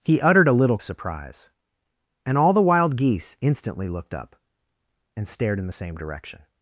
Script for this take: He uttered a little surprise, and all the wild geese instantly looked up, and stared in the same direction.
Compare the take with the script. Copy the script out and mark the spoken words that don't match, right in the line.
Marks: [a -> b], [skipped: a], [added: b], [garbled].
He uttered a little surprise, and all the wild geese instantly looked up, and stared in the same direction.